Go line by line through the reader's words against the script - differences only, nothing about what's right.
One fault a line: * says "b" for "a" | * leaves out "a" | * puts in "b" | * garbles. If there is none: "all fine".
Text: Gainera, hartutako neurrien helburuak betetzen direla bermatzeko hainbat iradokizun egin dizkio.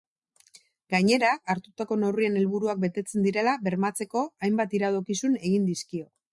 all fine